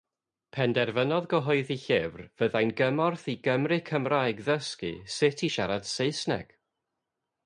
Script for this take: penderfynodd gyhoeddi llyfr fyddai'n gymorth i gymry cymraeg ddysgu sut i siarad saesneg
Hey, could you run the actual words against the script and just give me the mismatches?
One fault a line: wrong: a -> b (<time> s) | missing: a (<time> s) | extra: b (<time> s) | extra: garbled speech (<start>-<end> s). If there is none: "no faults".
no faults